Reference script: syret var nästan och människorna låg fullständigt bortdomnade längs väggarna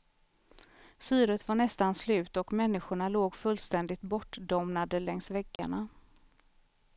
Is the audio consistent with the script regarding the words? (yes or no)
no